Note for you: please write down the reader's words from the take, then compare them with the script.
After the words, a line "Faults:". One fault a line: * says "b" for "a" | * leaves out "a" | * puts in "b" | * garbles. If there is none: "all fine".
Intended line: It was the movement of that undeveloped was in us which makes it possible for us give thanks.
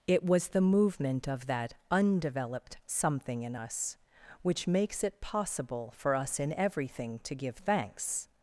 It was the movement of that undeveloped something in us which makes it possible for us in everything to give thanks.
Faults:
* says "something" for "was"
* puts in "in everything to"